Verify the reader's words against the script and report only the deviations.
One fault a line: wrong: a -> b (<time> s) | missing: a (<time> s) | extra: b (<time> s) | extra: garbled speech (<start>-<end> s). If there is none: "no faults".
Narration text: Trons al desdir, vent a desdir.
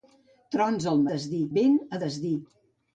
no faults